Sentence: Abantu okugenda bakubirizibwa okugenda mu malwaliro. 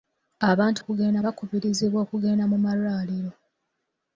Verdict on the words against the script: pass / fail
pass